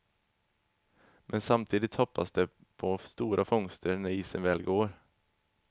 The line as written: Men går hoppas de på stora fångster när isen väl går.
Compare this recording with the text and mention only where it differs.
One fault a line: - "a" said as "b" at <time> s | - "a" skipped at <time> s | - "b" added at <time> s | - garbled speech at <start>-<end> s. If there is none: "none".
- "går" said as "samtidigt" at 1.4 s